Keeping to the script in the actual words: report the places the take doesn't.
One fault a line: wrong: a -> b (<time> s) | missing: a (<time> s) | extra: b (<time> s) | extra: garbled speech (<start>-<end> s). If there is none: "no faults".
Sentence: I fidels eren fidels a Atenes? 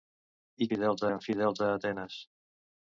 no faults